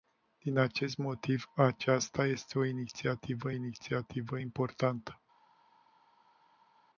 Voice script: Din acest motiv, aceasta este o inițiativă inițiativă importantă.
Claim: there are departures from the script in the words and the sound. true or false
false